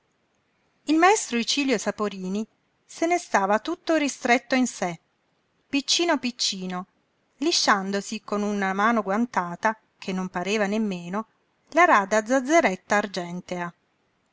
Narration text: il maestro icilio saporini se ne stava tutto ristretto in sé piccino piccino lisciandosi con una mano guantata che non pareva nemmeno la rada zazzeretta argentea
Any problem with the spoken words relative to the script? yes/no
no